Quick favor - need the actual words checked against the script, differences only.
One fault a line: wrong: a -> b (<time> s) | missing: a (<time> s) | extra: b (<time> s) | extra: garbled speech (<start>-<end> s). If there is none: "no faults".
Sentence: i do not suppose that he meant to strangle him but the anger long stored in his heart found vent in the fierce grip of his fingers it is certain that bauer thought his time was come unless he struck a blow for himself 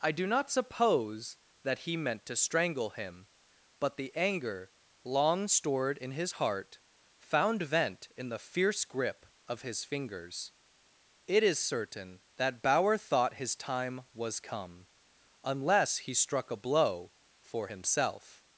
no faults